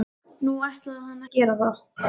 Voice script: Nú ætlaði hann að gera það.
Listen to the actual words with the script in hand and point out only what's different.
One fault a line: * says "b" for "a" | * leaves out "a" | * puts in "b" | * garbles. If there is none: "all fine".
all fine